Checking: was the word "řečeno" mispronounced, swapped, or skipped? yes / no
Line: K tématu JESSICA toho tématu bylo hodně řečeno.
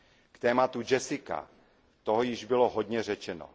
no